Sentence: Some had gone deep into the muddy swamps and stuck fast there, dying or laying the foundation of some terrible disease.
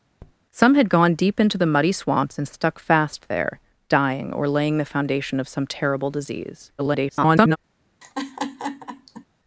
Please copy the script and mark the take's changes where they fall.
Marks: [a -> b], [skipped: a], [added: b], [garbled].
Some had gone deep into the muddy swamps and stuck fast there, dying or laying the foundation of some terrible disease. [garbled]